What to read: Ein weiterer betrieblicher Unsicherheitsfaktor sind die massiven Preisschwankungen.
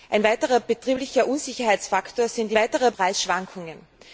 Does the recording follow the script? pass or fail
fail